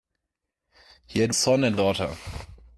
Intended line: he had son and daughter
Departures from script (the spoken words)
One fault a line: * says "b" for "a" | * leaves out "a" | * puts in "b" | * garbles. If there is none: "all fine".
all fine